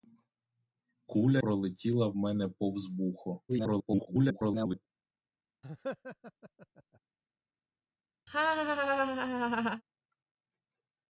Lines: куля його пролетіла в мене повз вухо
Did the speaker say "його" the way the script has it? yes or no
no